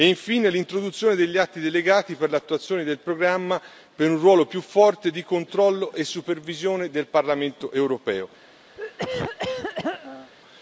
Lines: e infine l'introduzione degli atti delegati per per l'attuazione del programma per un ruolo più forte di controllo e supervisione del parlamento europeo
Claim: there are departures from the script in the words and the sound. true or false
true